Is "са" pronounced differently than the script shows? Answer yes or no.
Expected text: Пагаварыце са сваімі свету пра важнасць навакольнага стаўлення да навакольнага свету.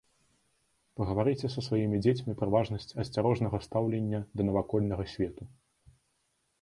no